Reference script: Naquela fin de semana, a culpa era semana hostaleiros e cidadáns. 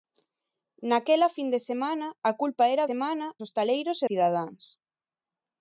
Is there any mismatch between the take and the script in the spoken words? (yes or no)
no